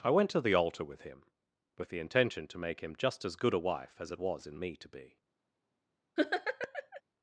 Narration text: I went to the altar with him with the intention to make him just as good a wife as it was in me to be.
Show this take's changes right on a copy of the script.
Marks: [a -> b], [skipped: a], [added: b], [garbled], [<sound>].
I went to the altar with him with the intention to make him just as good a wife as it was in me to be. [laugh]